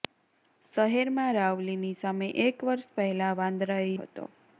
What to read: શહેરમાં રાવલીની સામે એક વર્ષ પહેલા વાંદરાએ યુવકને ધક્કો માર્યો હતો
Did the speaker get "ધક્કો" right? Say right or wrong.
wrong